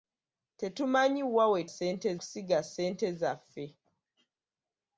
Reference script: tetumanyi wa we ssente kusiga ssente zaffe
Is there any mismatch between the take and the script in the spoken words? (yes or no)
no